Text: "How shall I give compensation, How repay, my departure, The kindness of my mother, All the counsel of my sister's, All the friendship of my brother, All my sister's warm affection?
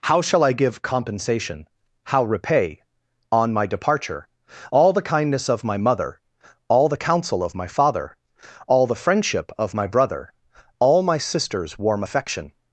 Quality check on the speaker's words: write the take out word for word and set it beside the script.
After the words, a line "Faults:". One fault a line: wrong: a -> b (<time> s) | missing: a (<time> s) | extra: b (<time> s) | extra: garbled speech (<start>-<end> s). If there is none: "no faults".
"How shall I give compensation, How repay, on my departure, All the kindness of my mother, All the counsel of my father, All the friendship of my brother, All my sister's warm affection?
Faults:
extra: on (3.3 s)
extra: All (4.7 s)
wrong: sister's -> father (7.7 s)